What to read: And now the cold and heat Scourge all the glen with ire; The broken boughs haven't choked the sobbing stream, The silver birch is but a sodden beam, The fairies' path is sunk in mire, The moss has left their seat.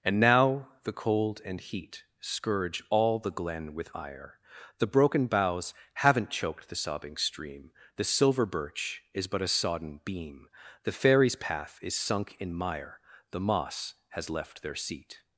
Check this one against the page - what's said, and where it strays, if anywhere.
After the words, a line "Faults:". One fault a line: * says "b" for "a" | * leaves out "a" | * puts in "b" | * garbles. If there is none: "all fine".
And now the cold and heat Scourge all the glen with ire; The broken boughs haven't choked the sobbing stream, The silver birch is but a sodden beam, The fairies' path is sunk in mire, The moss has left their seat.
Faults:
all fine